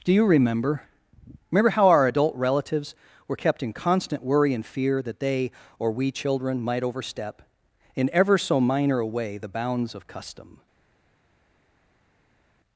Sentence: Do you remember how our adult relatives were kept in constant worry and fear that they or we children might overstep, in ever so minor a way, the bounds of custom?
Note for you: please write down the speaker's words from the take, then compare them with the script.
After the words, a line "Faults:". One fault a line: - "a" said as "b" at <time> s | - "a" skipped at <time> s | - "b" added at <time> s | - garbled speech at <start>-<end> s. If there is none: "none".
Do you remember remember how our adult relatives were kept in constant worry and fear that they or we children might overstep, in ever so minor a way, the bounds of custom?
Faults:
- "remember" added at 1.5 s